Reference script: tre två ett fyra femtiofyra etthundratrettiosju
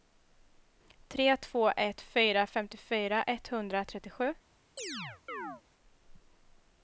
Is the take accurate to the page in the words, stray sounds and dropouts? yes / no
no